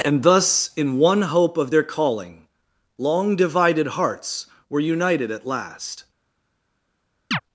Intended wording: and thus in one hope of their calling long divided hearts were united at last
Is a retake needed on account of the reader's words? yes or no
no